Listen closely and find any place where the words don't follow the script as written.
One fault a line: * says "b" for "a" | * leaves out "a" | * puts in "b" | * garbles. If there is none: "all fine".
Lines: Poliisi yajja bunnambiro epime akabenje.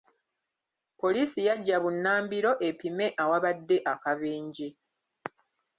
* puts in "awabadde"